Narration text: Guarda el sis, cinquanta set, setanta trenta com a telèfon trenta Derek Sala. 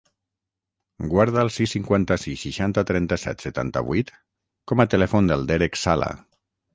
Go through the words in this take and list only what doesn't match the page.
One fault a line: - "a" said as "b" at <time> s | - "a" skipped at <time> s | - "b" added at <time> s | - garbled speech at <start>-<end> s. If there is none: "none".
- "sis seixanta trenta" added at 2.2 s
- "trenta" said as "vuit" at 3.9 s
- "trenta" said as "del" at 5.3 s